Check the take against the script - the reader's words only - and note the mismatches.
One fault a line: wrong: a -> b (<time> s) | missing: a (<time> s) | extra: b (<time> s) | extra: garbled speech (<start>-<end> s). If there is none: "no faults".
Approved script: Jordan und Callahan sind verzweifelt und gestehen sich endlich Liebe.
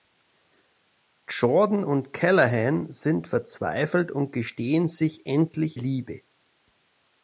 no faults